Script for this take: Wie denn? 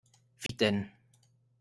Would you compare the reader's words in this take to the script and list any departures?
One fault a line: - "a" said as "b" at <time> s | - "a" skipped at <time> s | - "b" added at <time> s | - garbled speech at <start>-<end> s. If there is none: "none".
none